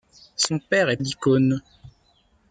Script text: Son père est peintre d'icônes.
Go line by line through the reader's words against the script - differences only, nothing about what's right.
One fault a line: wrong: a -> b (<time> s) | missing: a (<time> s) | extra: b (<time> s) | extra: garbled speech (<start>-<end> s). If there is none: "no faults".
missing: peintre (1.0 s)